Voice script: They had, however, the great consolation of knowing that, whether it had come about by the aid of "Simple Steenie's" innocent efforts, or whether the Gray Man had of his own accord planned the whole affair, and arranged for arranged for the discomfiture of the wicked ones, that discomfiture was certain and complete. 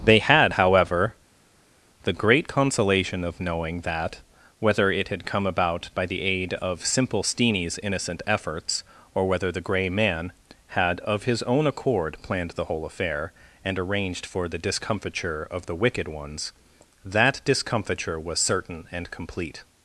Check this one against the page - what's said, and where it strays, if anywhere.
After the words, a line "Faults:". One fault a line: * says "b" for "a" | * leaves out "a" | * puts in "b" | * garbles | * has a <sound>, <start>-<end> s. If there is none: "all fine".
They had, however, the great consolation of knowing that, whether it had come about by the aid of "Simple Steenie's" innocent efforts, or whether the Gray Man had of his own accord planned the whole affair, and arranged for the discomfiture of the wicked ones, that discomfiture was certain and complete.
Faults:
* leaves out "arranged for"